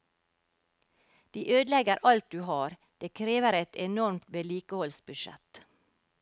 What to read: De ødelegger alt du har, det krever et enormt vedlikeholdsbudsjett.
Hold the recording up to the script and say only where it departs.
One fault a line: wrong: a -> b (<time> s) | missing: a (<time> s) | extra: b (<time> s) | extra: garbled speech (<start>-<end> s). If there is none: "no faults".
no faults